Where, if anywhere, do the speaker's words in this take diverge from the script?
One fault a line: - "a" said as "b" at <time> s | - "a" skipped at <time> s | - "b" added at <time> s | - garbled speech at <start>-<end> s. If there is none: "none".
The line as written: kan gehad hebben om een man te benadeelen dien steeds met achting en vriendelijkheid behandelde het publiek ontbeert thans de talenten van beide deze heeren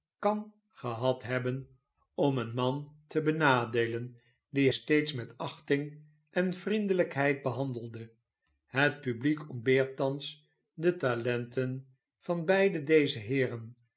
none